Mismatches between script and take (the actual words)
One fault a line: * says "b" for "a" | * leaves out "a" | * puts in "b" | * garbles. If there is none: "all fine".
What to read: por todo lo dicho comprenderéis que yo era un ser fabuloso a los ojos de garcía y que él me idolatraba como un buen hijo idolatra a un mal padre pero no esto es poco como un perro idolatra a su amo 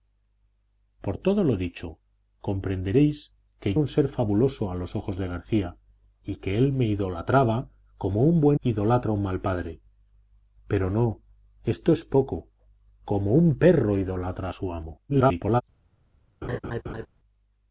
* leaves out "yo era"
* leaves out "hijo"
* garbles